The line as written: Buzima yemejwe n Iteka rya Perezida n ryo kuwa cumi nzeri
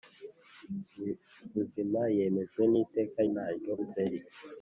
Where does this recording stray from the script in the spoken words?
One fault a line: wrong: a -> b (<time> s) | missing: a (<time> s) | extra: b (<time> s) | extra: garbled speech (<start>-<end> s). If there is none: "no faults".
missing: rya Perezida (3.2 s)
missing: kuwa cumi (3.7 s)